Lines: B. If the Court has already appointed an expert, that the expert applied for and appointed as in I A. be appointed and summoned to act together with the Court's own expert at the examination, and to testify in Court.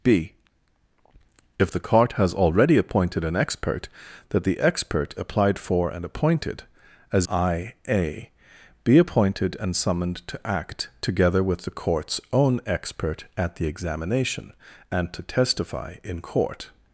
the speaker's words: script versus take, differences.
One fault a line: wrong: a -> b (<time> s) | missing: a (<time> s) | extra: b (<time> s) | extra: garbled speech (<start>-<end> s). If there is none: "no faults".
missing: in (7.3 s)